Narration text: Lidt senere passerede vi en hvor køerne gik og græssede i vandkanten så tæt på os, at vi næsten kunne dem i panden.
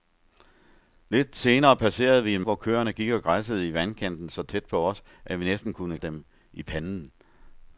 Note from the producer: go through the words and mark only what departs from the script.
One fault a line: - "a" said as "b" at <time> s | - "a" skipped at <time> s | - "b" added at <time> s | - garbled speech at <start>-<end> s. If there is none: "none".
none